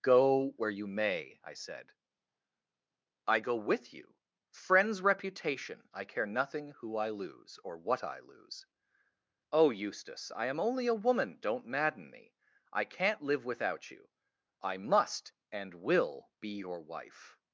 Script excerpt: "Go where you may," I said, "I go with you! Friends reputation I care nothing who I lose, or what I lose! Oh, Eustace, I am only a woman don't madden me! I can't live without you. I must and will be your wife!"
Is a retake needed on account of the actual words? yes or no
no